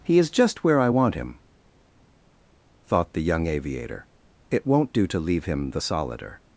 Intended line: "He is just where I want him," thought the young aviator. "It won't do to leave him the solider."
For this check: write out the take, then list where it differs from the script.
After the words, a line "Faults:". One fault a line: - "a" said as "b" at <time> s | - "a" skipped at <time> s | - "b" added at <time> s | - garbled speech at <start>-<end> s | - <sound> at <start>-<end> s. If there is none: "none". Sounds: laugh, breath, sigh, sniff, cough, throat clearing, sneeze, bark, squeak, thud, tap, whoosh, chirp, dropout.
"He is just where I want him," thought the young aviator. "It won't do to leave him the solider."
Faults:
none